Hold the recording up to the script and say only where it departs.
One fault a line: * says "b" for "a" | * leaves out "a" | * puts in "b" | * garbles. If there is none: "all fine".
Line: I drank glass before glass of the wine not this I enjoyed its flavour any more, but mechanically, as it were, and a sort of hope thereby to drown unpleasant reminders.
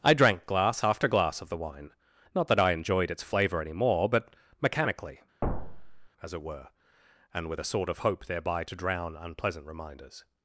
* says "after" for "before"
* says "that" for "this"
* puts in "with"